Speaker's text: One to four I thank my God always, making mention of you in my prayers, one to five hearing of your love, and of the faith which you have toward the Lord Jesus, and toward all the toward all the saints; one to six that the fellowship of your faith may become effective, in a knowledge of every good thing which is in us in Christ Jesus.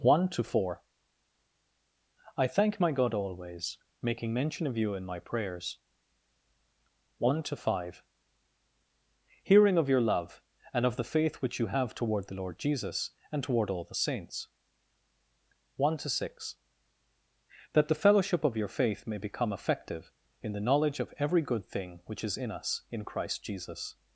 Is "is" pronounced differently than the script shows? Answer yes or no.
no